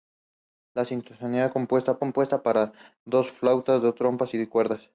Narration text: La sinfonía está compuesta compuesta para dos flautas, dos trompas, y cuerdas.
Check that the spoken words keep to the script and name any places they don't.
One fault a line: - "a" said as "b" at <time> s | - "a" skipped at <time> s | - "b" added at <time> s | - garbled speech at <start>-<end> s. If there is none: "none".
none